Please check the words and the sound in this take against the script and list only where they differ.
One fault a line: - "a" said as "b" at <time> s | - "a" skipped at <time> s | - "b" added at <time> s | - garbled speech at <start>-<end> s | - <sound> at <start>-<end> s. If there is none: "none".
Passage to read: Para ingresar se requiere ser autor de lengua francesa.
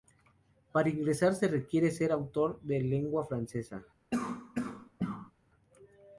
- cough at 4.1-5.3 s